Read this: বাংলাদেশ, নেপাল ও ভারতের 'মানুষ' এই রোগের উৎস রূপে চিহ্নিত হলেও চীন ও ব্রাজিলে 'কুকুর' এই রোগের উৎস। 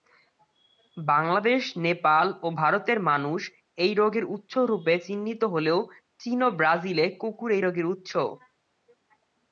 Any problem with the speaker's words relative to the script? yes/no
no